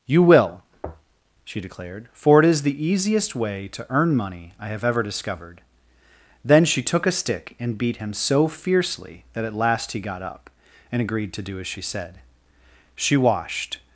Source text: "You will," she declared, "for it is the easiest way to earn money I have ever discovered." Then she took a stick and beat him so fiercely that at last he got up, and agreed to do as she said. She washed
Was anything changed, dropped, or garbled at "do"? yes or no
no